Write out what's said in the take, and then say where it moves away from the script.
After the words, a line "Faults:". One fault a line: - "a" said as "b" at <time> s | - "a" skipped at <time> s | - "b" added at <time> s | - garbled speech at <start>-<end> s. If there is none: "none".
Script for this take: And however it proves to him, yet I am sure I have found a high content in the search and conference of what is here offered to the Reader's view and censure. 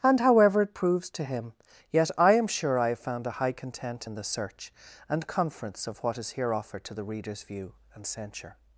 And however it proves to him, yet I am sure I have found a high content in the search and conference of what is here offered to the Reader's view and censure.
Faults:
none